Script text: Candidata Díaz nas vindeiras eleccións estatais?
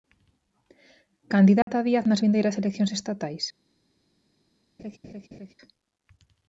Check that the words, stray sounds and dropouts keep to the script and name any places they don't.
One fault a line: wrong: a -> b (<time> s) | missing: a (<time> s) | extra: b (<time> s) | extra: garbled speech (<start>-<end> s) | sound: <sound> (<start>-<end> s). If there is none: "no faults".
sound: dropout (1.6-1.7 s)
sound: laugh (4.8-5.5 s)